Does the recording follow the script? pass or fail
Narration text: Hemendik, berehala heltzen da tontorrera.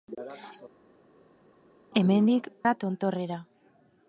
fail